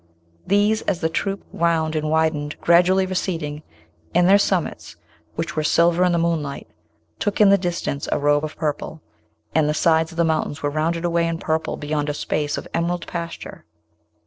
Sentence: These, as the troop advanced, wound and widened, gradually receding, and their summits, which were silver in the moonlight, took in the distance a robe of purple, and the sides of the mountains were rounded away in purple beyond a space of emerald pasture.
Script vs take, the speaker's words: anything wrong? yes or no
yes